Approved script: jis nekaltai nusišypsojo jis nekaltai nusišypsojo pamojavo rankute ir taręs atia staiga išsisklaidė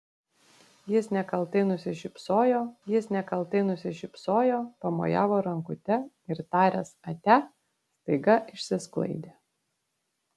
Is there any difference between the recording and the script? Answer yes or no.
no